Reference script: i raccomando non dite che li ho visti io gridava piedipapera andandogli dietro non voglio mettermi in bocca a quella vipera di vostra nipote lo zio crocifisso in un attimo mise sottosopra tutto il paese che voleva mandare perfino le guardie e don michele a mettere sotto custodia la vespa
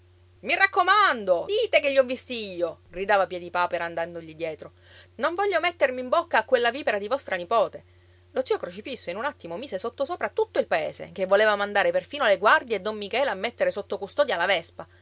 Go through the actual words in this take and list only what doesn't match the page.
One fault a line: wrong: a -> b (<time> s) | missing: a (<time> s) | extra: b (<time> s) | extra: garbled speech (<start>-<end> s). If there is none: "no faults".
missing: non (1.5 s)